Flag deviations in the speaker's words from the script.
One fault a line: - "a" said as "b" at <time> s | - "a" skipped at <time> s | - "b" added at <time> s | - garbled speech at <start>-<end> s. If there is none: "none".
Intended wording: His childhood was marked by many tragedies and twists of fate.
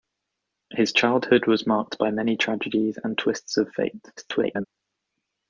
- garbled speech at 4.2-4.7 s